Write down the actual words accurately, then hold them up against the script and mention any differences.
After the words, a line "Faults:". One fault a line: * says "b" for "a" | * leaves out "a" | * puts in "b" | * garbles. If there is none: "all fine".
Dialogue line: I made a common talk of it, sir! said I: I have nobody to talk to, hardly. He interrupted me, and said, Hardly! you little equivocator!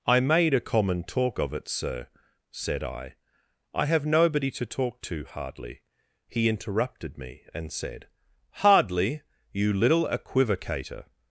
I made a common talk of it, sir! said I: I have nobody to talk to, hardly. He interrupted me, and said, Hardly! you little equivocator!
Faults:
all fine